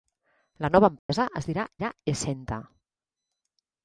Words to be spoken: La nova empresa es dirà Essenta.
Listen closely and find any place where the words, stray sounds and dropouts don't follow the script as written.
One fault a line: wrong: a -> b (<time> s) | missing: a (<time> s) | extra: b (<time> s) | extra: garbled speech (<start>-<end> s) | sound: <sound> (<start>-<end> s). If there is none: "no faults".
sound: dropout (1.0-1.1 s)
extra: dirà (1.8 s)